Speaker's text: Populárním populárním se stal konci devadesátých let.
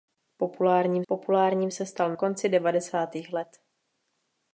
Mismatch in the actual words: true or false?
false